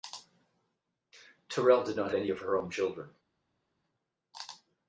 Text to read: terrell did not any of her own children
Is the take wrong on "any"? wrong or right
right